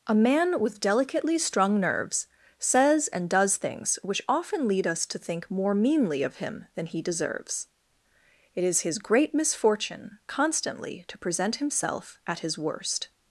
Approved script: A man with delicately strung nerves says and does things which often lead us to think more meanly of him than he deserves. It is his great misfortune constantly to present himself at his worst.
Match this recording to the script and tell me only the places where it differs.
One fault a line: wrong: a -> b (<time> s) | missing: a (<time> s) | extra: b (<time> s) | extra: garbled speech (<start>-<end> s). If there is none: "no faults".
no faults